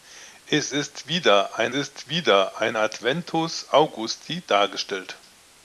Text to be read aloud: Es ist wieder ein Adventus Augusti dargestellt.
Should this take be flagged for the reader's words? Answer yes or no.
yes